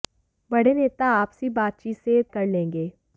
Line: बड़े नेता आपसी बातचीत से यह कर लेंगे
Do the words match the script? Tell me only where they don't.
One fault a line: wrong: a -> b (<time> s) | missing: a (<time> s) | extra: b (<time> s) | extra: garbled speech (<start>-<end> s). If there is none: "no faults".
no faults